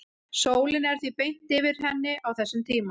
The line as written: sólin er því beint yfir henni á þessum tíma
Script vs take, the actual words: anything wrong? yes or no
no